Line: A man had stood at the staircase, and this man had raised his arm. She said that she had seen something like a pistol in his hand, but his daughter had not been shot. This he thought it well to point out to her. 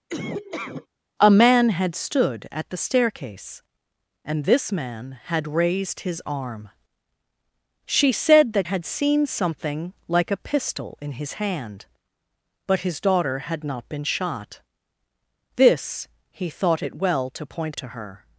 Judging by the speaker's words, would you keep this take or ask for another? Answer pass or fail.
fail